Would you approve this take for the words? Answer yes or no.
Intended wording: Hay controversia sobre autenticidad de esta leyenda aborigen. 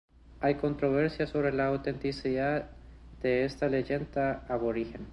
no